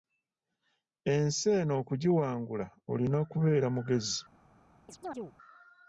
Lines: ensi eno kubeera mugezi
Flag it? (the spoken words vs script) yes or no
yes